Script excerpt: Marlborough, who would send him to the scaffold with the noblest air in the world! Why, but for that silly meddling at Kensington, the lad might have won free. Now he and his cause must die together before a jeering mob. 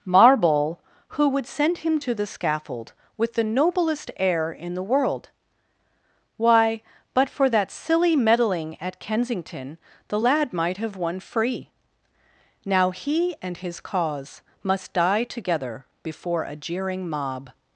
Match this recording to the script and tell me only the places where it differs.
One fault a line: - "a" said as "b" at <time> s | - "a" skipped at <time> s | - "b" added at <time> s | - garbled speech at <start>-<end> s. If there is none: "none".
- "Marlborough" said as "Marble" at 0.1 s